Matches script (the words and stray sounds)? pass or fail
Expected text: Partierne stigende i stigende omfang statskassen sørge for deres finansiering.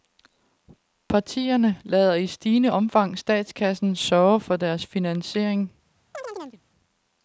fail